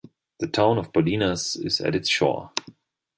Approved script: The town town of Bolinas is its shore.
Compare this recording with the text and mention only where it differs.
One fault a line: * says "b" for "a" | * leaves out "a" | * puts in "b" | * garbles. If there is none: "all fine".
* leaves out "town"
* puts in "at"